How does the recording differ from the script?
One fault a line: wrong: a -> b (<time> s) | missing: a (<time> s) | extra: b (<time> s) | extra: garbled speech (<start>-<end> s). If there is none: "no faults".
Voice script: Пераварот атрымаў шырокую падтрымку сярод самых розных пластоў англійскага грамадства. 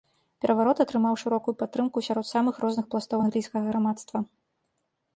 no faults